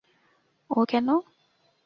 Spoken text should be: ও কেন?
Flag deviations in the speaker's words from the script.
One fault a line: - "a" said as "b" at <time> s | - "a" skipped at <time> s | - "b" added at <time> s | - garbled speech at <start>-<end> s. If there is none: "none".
none